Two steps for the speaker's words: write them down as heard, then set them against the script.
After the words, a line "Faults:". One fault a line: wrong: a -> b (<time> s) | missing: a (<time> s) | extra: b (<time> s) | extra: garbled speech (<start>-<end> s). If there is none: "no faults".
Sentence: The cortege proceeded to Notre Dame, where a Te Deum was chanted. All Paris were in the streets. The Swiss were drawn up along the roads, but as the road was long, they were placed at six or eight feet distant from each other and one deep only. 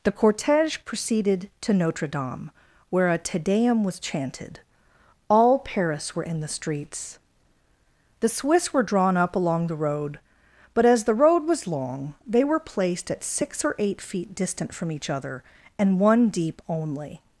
The cortege proceeded to Notre Dame, where a Te Deum was chanted. All Paris were in the streets. The Swiss were drawn up along the road, but as the road was long, they were placed at six or eight feet distant from each other and one deep only.
Faults:
wrong: roads -> road (9.8 s)